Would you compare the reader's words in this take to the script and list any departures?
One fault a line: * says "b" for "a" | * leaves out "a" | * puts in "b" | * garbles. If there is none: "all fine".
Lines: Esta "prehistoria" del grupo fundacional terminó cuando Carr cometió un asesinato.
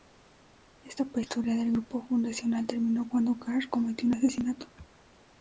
all fine